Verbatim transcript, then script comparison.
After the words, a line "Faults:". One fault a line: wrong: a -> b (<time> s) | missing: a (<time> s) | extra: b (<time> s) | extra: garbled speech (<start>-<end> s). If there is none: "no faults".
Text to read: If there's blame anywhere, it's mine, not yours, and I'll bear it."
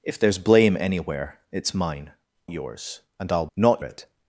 If there's blame anywhere, it's mine, yours, and I'll not it."
Faults:
missing: not (2.1 s)
wrong: bear -> not (3.6 s)